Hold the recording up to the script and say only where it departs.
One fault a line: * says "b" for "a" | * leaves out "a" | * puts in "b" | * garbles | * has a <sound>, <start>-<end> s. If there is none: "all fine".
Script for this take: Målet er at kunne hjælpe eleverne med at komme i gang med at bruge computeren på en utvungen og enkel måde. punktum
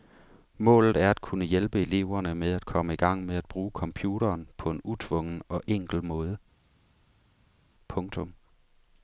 all fine